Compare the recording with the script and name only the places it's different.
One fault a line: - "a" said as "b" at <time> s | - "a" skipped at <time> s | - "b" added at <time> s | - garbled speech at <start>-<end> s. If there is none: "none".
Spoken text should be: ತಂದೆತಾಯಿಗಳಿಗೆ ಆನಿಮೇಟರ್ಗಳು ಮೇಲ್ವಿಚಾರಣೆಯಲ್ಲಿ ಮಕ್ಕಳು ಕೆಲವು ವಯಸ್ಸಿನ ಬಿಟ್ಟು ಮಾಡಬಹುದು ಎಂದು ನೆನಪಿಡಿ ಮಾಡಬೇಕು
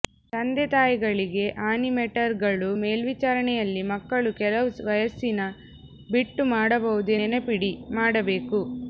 - "ಎಂದು" skipped at 7.1 s